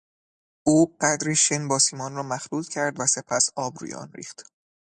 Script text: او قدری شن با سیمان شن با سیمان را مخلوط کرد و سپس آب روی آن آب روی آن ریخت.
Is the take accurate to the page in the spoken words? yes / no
no